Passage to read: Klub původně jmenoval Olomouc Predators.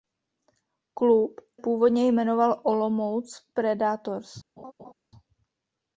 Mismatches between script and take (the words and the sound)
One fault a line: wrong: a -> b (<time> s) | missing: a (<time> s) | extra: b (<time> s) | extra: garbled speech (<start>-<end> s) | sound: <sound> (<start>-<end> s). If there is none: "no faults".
sound: laugh (4.6-4.9 s)